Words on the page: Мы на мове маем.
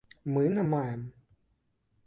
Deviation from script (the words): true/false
true